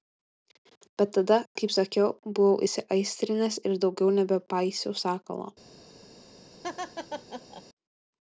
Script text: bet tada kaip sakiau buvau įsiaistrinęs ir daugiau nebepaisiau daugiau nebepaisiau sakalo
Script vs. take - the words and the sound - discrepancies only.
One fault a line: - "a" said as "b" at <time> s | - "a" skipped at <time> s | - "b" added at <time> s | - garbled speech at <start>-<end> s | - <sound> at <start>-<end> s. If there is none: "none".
- "daugiau nebepaisiau" skipped at 5.0 s
- laugh at 6.6-7.6 s